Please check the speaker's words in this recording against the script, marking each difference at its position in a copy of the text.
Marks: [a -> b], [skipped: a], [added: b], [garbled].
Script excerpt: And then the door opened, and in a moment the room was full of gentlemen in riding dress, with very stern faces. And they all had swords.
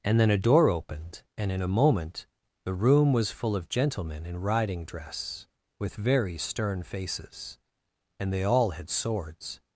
And then [the -> a] door opened, and in a moment the room was full of gentlemen in riding dress, with very stern faces. And they all had swords.